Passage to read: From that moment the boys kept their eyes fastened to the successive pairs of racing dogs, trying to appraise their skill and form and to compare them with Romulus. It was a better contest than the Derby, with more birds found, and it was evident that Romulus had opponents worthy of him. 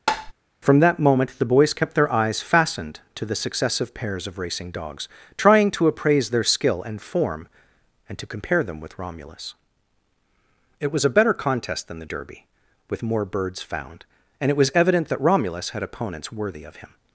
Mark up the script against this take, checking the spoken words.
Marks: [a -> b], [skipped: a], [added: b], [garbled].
From that moment the boys kept their eyes fastened to the successive pairs of racing dogs, trying to appraise their skill and form and to compare them with Romulus. It was a better contest than the Derby, with more birds found, and it was evident that Romulus had opponents worthy of him.